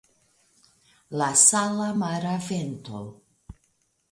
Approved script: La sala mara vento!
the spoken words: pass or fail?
pass